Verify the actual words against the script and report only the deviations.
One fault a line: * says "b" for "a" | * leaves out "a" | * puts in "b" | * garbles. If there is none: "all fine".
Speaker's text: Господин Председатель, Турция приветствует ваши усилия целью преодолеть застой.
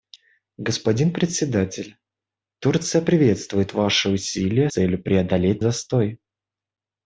all fine